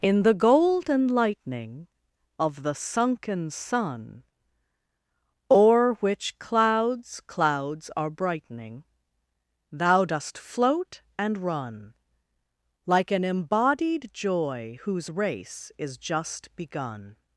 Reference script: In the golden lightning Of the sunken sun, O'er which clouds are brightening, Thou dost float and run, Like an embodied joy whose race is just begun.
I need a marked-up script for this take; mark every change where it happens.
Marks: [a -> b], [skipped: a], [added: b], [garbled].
In the golden lightning Of the sunken sun, O'er which clouds [added: clouds] are brightening, Thou dost float and run, Like an embodied joy whose race is just begun.